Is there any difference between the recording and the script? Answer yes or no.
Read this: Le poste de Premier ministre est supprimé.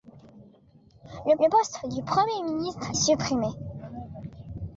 yes